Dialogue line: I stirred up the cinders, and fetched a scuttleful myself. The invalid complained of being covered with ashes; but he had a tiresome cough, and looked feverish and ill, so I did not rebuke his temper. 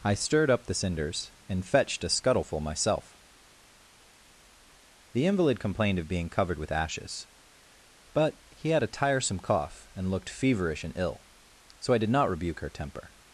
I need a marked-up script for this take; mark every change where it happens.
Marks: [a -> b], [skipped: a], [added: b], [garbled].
I stirred up the cinders, and fetched a scuttleful myself. The invalid complained of being covered with ashes; but he had a tiresome cough, and looked feverish and ill, so I did not rebuke [his -> her] temper.